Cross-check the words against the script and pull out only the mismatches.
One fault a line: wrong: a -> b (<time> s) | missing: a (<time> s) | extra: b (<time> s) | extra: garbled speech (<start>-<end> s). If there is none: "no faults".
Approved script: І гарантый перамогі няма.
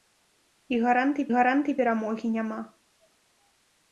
extra: гарантый (1.3 s)